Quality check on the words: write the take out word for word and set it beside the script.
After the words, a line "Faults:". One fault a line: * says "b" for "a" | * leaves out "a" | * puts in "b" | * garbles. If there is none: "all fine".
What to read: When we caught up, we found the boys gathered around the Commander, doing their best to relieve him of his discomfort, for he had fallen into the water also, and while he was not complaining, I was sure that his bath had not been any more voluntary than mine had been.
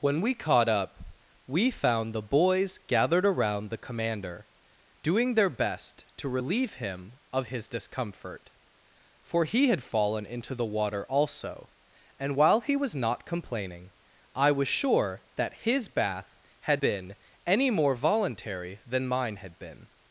When we caught up, we found the boys gathered around the Commander, doing their best to relieve him of his discomfort, for he had fallen into the water also, and while he was not complaining, I was sure that his bath had been any more voluntary than mine had been.
Faults:
* leaves out "not"